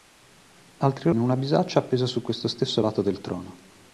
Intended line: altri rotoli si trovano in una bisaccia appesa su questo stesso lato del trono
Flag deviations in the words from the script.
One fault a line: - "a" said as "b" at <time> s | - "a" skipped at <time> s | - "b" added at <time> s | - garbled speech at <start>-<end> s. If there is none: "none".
- "rotoli si trovano" skipped at 1.1 s